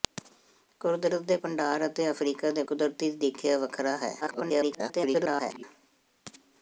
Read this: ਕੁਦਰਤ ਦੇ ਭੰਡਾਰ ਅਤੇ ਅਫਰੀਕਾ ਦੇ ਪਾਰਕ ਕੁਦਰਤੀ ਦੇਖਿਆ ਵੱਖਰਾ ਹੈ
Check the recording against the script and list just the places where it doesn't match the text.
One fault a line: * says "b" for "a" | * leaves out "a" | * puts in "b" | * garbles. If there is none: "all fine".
* leaves out "ਪਾਰਕ"
* garbles